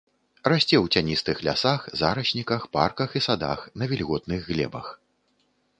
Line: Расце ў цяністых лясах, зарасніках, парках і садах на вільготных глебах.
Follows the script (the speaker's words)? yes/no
yes